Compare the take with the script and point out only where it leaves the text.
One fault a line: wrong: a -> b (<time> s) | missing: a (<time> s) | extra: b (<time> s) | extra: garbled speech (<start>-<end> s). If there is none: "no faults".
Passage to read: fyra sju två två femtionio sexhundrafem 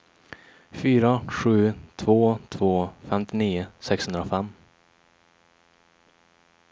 no faults